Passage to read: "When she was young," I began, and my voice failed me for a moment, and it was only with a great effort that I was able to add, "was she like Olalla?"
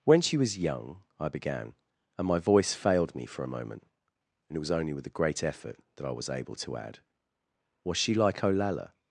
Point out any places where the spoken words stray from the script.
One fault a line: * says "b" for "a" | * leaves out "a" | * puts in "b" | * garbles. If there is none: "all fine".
all fine